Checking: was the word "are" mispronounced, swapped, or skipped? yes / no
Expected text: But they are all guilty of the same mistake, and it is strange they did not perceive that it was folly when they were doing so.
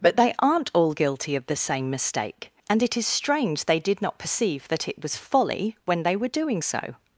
yes